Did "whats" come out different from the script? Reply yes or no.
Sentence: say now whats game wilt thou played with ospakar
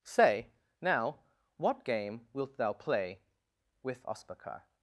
yes